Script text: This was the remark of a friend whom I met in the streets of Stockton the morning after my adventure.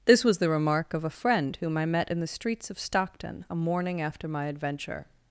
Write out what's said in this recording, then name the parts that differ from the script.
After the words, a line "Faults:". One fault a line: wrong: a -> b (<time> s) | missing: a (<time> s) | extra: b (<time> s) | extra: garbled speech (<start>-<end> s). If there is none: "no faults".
This was the remark of a friend whom I met in the streets of Stockton a morning after my adventure.
Faults:
wrong: the -> a (3.5 s)